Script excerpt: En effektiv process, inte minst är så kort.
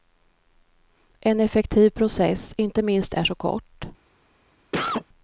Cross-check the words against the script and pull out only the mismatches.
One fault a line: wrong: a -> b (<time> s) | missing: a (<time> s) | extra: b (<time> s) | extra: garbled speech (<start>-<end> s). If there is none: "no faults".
no faults